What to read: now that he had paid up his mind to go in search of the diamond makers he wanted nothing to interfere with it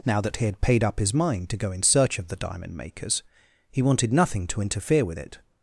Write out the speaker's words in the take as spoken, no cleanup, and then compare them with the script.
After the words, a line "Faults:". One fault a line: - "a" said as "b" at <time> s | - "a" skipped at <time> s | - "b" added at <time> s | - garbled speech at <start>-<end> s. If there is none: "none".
now that he had paid up his mind to go in search of the diamond makers he wanted nothing to interfere with it
Faults:
none